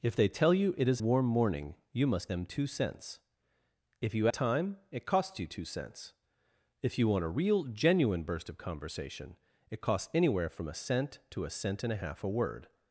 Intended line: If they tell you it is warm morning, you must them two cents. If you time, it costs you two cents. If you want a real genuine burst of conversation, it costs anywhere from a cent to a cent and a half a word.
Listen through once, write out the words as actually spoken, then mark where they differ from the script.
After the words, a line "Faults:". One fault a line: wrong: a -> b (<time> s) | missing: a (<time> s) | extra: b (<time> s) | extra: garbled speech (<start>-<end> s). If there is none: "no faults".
If they tell you it is warm morning, you must them two cents. If you time, it costs you two cents. If you want a real genuine burst of conversation, it costs anywhere from a cent to a cent and a half a word.
Faults:
no faults